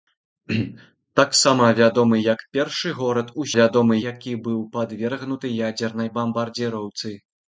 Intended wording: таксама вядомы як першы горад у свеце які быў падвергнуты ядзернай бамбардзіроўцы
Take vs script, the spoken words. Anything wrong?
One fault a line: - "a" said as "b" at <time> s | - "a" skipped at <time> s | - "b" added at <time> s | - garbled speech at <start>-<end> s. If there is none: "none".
- "свеце" said as "вядомы" at 3.6 s